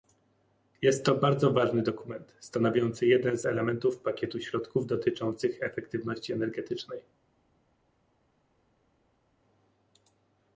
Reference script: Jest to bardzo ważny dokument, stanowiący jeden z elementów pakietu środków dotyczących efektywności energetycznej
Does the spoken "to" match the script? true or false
true